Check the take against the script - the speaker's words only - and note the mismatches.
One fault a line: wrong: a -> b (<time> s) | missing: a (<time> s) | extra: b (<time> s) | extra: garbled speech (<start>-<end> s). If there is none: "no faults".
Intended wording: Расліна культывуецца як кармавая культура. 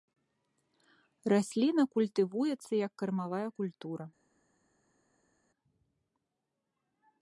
no faults